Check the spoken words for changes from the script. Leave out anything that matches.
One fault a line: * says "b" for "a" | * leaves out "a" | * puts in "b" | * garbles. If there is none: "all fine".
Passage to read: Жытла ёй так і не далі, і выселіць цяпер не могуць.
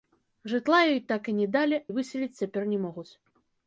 all fine